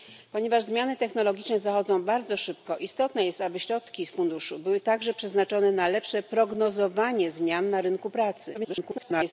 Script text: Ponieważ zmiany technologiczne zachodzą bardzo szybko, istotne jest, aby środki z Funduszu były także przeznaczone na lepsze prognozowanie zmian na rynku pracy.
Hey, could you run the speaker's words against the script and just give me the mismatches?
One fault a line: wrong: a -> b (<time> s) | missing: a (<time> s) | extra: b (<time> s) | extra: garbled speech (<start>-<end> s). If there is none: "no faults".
extra: garbled speech (8.5-9.3 s)